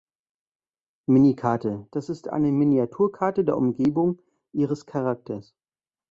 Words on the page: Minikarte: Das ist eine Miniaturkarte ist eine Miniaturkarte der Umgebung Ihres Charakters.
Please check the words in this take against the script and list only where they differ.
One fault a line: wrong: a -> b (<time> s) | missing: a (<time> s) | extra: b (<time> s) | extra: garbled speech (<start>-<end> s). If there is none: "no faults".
missing: ist eine Miniaturkarte (3.5 s)